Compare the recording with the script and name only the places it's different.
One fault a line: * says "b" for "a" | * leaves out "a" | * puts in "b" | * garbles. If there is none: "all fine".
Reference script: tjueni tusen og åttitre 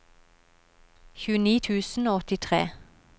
all fine